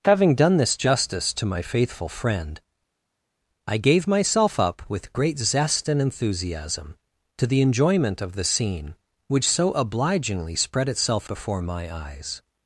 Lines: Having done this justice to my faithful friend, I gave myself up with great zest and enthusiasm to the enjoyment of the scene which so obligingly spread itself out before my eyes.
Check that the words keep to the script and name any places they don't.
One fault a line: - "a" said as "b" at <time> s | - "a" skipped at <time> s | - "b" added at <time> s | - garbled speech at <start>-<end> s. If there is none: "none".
- "out" skipped at 11.3 s